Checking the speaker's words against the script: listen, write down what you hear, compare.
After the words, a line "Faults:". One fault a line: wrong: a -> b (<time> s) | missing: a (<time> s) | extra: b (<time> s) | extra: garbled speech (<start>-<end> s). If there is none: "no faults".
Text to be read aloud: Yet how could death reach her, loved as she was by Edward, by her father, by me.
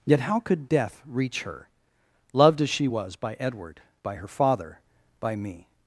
Yet how could death reach her, loved as she was by Edward, by her father, by me.
Faults:
no faults